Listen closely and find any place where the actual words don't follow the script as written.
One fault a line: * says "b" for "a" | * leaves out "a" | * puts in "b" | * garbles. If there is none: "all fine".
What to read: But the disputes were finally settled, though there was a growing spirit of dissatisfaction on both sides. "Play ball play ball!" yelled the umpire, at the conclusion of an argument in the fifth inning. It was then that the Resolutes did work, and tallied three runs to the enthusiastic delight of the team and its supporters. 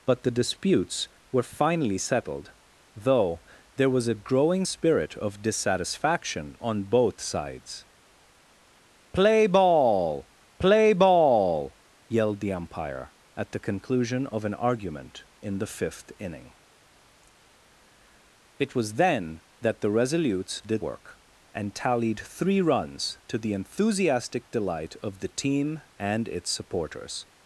all fine